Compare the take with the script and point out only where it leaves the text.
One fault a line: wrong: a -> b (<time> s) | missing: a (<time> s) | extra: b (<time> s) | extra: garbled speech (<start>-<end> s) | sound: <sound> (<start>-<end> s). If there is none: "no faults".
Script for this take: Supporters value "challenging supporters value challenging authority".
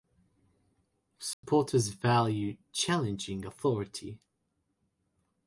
sound: dropout (1.3-1.4 s)
missing: supporters value challenging (3.4 s)